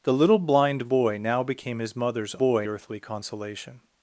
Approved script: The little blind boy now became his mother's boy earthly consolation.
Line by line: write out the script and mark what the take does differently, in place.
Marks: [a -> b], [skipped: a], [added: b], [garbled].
The little blind boy now became his mother's boy earthly consolation.